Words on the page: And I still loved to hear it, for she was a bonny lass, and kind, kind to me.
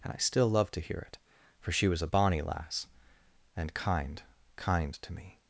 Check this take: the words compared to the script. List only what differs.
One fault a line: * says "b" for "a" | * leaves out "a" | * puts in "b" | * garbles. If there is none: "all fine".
all fine